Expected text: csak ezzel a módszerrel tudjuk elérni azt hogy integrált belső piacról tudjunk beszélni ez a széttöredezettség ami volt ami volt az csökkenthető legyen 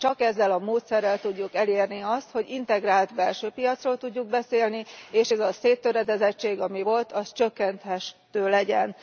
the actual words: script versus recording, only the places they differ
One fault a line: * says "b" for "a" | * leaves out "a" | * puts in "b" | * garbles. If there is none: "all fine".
* puts in "és"
* leaves out "ami volt"